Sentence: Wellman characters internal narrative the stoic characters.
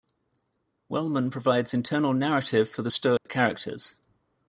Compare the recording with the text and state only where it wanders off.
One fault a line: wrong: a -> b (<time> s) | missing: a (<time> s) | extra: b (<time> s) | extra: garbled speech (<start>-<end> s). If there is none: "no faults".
wrong: characters -> provides (1.3 s)
extra: for (2.7 s)